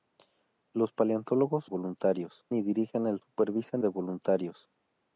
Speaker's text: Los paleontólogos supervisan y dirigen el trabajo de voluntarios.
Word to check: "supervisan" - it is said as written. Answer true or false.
false